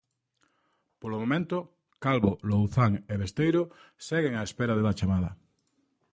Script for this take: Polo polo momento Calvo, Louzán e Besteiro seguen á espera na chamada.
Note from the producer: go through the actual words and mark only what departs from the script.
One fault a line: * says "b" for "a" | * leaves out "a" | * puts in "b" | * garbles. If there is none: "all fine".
* leaves out "polo"
* says "da" for "na"